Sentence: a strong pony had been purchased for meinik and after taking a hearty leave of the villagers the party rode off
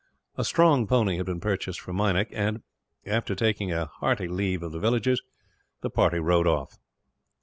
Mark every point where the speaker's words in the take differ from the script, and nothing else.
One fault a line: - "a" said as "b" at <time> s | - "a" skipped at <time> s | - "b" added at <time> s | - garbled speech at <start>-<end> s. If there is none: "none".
none